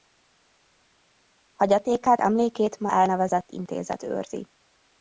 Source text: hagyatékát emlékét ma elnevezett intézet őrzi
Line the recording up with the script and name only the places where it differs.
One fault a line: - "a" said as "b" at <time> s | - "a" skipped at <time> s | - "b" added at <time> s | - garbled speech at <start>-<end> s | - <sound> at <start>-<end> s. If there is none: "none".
none